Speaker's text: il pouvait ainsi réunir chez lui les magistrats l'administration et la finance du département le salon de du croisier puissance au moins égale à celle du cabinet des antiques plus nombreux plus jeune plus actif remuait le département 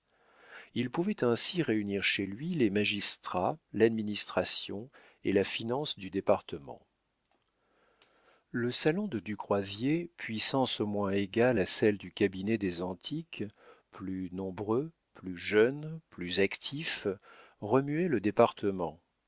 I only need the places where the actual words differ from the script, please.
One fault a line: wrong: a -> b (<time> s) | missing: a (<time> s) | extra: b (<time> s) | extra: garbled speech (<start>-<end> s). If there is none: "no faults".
no faults